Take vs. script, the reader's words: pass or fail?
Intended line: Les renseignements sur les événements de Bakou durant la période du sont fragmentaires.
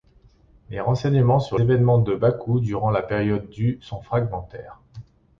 fail